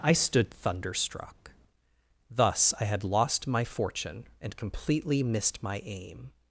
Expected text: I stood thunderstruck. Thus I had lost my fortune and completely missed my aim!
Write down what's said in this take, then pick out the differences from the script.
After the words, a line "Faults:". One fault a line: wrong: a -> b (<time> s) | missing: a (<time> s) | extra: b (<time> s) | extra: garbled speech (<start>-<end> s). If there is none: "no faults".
I stood thunderstruck. Thus I had lost my fortune and completely missed my aim!
Faults:
no faults